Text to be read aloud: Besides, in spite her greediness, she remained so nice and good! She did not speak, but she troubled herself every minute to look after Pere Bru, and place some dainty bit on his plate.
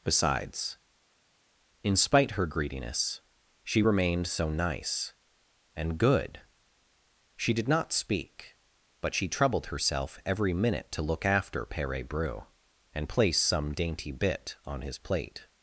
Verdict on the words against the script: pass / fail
pass